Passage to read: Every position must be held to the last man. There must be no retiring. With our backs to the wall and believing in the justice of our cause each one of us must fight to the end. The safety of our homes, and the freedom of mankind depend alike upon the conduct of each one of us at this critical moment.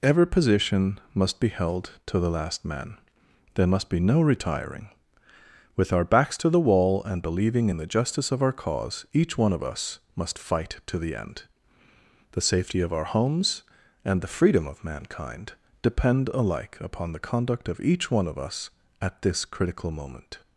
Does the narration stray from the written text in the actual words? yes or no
no